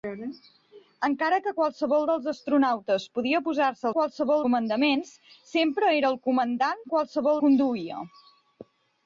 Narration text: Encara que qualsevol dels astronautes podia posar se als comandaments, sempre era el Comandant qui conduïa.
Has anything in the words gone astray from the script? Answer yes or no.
yes